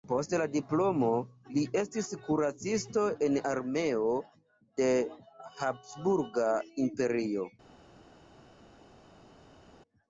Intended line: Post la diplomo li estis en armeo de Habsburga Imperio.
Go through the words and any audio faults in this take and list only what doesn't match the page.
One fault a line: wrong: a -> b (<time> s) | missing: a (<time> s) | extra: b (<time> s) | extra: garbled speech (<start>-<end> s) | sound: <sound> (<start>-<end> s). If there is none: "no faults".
extra: kuracisto (2.3 s)